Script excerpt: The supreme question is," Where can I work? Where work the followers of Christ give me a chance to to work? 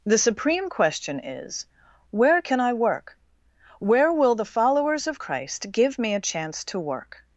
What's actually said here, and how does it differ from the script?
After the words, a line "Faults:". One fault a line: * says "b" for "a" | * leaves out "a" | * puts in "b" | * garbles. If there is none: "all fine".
The supreme question is," Where can I work? Where will the followers of Christ give me a chance to work?
Faults:
* says "will" for "work"
* leaves out "to"